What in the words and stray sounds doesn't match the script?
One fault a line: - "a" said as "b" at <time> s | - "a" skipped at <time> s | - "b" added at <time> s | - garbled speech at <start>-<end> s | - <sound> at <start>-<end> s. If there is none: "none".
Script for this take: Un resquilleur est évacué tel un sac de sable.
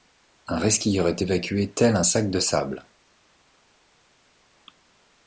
none